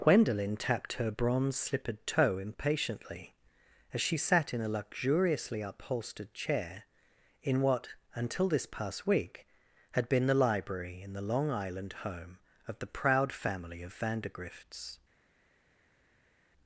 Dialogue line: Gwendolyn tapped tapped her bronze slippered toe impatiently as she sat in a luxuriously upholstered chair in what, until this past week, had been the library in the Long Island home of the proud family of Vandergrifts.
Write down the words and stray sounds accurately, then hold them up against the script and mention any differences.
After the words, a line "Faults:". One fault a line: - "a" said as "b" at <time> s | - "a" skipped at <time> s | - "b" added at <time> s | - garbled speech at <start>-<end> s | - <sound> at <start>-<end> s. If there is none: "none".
Gwendolyn tapped her bronze slippered toe impatiently as she sat in a luxuriously upholstered chair in what, until this past week, had been the library in the Long Island home of the proud family of Vandergrifts.
Faults:
- "tapped" skipped at 0.9 s